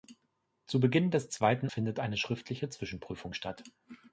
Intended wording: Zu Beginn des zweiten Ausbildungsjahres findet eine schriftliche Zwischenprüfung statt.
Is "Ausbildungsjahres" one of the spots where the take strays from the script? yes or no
yes